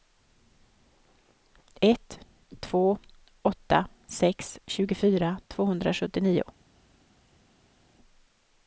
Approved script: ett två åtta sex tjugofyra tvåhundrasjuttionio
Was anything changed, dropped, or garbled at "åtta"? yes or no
no